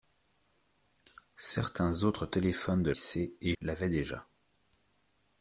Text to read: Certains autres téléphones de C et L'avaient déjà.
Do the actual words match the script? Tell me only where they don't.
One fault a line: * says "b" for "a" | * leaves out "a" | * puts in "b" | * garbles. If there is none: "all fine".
all fine